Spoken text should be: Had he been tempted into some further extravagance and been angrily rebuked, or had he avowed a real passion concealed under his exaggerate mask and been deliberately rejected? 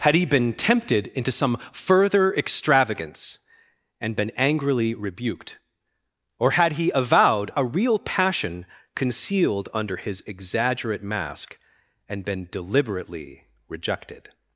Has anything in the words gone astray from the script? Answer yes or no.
no